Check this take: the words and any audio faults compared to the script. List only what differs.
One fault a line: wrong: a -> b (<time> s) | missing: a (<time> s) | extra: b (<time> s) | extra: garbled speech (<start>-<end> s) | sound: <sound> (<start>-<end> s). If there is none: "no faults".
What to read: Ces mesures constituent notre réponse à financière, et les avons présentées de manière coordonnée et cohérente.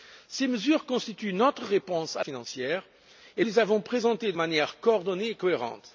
no faults